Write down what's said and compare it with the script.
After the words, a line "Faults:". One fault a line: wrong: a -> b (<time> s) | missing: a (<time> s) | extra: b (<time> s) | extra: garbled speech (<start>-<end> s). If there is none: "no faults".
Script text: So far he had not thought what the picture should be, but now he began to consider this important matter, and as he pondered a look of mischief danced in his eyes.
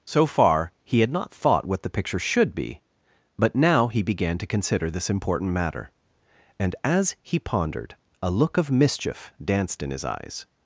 So far he had not thought what the picture should be, but now he began to consider this important matter, and as he pondered a look of mischief danced in his eyes.
Faults:
no faults